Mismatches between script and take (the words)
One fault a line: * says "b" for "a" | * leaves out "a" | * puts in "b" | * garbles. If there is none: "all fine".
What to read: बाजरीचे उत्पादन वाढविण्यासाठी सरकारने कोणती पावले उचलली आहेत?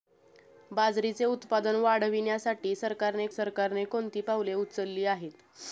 * puts in "सरकारने"